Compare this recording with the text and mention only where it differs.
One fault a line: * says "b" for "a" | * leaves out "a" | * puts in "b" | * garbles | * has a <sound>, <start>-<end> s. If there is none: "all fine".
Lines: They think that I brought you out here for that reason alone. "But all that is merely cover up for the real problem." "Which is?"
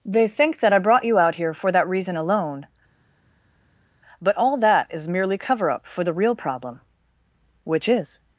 all fine